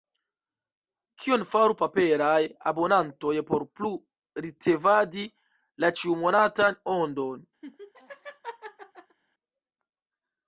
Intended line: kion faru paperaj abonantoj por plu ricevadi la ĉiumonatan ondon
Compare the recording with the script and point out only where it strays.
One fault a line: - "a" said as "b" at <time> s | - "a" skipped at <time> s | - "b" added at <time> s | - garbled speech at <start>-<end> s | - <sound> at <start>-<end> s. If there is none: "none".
- laugh at 7.6-9.2 s